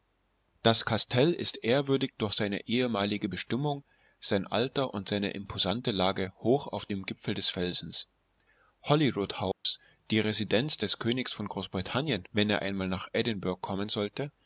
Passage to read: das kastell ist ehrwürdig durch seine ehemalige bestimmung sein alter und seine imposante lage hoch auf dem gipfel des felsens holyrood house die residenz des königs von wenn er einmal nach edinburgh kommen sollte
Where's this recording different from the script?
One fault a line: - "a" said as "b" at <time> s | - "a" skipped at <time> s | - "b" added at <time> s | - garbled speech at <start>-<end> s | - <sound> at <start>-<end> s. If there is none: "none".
- dropout at 9.5-9.7 s
- "großbritannien" added at 11.5 s